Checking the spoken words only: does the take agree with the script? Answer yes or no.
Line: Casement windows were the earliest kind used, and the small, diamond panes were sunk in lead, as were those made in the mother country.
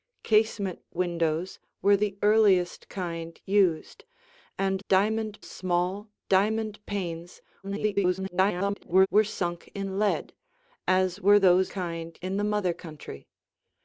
no